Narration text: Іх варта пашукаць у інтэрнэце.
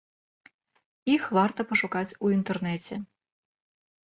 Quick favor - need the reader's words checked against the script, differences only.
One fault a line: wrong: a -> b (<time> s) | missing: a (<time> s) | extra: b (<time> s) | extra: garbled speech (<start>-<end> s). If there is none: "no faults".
no faults